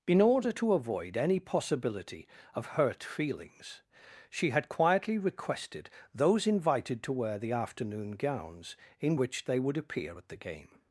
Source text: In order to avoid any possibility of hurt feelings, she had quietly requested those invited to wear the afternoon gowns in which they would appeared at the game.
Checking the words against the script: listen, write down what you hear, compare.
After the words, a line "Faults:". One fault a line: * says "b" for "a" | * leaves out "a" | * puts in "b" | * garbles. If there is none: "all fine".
In order to avoid any possibility of hurt feelings, she had quietly requested those invited to wear the afternoon gowns in which they would appear at the game.
Faults:
* says "appear" for "appeared"